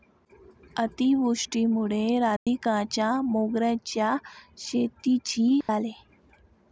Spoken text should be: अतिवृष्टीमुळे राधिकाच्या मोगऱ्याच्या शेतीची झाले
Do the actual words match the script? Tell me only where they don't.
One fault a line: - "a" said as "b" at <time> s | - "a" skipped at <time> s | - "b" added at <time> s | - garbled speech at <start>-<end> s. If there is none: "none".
none